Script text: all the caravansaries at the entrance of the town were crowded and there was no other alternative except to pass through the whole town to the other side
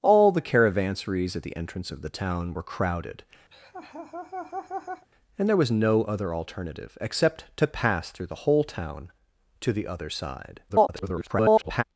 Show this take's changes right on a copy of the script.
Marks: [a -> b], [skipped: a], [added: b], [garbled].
all the caravansaries at the entrance of the town were crowded and there was no other alternative except to pass through the whole town to the other side [garbled]